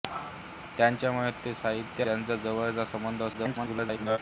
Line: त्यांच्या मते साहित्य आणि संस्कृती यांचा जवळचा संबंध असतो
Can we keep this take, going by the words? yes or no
no